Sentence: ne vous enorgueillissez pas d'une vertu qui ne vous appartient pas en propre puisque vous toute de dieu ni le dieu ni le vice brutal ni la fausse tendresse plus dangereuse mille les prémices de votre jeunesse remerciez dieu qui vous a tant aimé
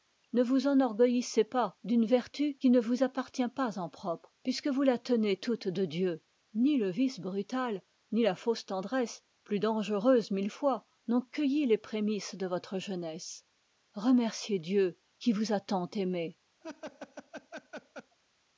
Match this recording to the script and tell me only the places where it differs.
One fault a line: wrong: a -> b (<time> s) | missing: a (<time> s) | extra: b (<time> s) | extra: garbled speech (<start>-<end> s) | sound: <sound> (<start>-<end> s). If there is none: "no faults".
extra: la tenez (4.8 s)
missing: dieu ni le (6.9 s)
extra: fois n'ont cueilli (10.5 s)
sound: laugh (16.6-18.2 s)